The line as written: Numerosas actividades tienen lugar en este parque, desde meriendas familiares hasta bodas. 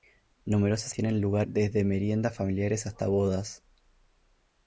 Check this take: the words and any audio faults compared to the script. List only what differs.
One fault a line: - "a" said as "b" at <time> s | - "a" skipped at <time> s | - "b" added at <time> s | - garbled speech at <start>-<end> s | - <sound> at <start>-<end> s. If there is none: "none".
- "actividades" skipped at 0.9 s
- "en este parque" skipped at 1.5 s